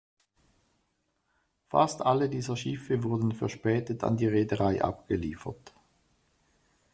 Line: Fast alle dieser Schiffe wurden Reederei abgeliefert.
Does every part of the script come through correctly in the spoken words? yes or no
no